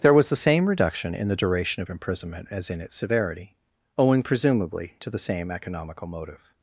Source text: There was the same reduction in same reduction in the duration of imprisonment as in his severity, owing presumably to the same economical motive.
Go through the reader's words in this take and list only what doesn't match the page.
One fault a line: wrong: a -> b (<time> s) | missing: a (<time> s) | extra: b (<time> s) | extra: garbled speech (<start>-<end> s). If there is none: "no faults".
missing: same reduction in (1.3 s)
wrong: his -> its (2.8 s)